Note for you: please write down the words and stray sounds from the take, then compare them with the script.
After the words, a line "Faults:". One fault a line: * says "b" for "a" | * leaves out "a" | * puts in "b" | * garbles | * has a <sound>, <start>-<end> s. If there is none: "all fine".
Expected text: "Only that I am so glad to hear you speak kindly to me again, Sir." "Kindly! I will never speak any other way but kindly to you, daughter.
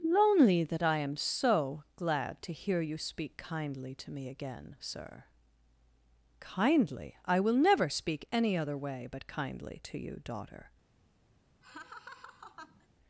"Lonely that I am so glad to hear you speak kindly to me again, Sir." "Kindly! I will never speak any other way but kindly to you, daughter.
Faults:
* says "Lonely" for "Only"
* has a laugh, 11.6-12.9 s